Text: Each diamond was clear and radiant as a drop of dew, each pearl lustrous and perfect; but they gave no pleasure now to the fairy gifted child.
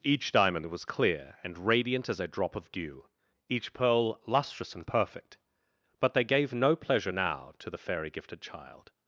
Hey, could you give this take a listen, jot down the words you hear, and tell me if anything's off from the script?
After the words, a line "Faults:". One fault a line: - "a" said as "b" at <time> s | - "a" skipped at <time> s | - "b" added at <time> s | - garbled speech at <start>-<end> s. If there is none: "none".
Each diamond was clear and radiant as a drop of dew, each pearl lustrous and perfect; but they gave no pleasure now to the fairy gifted child.
Faults:
none